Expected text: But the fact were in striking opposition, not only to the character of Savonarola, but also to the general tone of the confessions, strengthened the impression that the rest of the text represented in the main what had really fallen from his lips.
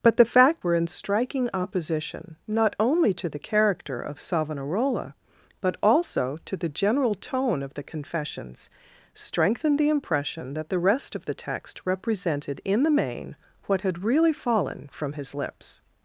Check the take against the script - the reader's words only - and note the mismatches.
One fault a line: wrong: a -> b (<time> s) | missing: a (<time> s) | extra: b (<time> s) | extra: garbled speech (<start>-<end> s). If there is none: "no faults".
no faults